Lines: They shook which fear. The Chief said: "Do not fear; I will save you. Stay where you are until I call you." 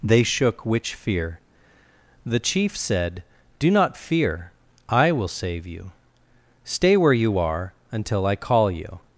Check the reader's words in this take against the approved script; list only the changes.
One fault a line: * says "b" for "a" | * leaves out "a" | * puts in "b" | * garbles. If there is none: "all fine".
all fine